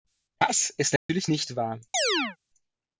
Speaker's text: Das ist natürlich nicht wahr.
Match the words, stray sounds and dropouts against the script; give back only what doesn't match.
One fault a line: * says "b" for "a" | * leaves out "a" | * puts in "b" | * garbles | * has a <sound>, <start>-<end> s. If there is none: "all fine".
* has a dropout, 1.0-1.1 s
* has a chirp, 1.9-2.4 s